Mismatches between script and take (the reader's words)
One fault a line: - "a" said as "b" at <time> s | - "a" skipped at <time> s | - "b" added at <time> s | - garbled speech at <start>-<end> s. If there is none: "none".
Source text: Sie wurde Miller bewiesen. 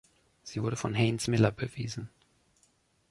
- "von Haynes" added at 0.8 s